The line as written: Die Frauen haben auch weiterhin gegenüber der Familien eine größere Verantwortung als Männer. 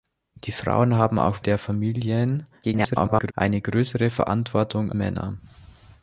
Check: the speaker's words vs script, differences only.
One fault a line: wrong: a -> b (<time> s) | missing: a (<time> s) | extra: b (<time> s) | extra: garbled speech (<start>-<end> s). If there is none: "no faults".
missing: weiterhin gegenüber (1.4 s)
extra: garbled speech (2.6-3.3 s)
missing: als (4.9 s)